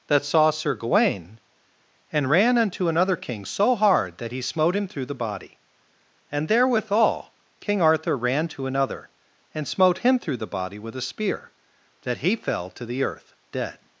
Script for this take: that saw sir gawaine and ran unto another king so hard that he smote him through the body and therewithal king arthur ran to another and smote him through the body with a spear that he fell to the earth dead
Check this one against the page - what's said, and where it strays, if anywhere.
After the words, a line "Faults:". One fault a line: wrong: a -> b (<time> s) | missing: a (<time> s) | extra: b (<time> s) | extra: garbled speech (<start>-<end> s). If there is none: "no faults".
that saw sir gawaine and ran unto another king so hard that he smote him through the body and therewithal king arthur ran to another and smote him through the body with a spear that he fell to the earth dead
Faults:
no faults